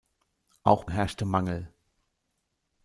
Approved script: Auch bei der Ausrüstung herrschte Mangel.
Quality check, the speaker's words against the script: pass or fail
fail